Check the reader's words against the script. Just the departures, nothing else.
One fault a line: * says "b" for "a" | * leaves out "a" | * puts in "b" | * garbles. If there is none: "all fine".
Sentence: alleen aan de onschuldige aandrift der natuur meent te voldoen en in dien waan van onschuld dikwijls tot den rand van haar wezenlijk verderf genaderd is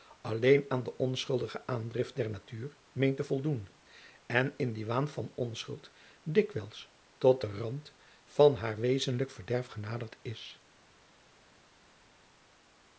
all fine